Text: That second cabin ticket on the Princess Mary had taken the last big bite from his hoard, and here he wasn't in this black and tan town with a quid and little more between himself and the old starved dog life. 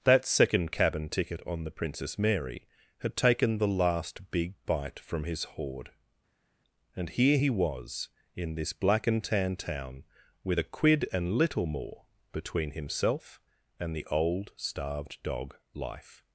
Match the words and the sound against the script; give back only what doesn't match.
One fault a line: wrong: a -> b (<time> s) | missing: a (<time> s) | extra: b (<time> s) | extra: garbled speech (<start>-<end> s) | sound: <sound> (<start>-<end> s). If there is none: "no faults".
wrong: wasn't -> was (7.5 s)